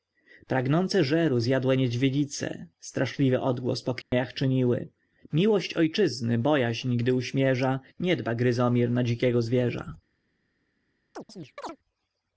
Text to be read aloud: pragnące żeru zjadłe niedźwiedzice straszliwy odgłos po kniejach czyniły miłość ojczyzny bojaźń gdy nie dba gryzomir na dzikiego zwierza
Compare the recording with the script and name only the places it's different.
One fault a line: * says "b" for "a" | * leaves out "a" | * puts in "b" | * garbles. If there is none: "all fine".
* puts in "uśmierza"